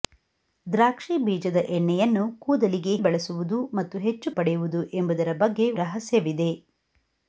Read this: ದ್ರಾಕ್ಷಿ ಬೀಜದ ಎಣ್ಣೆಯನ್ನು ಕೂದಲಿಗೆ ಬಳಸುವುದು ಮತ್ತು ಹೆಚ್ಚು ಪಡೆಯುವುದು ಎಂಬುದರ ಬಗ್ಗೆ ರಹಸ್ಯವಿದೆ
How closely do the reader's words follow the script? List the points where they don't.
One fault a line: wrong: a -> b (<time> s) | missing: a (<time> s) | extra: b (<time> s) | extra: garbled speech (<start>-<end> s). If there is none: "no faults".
no faults